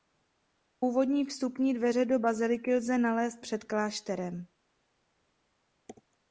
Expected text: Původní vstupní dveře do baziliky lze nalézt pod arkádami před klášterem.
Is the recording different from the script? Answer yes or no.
yes